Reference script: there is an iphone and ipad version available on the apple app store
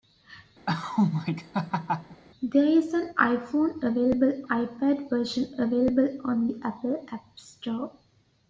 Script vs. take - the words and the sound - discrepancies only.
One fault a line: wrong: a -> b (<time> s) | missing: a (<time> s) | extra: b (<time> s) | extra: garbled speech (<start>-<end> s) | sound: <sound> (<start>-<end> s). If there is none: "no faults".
sound: laugh (0.7-2.2 s)
wrong: and -> available (3.8 s)